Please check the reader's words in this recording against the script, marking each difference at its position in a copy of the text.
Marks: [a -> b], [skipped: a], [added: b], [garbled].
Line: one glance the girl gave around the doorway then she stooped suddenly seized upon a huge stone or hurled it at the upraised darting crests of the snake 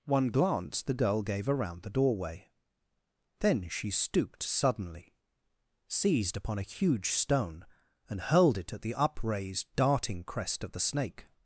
one glance the girl gave around the doorway then she stooped suddenly seized upon a huge stone [or -> and] hurled it at the upraised darting [crests -> crest] of the snake